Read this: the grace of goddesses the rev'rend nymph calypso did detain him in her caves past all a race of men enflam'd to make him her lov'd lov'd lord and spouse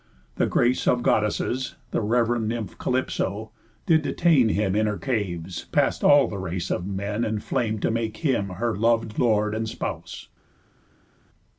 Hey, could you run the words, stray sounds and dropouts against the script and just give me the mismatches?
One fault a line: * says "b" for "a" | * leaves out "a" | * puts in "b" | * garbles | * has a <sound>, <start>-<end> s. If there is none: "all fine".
* says "the" for "a"
* leaves out "lov'd"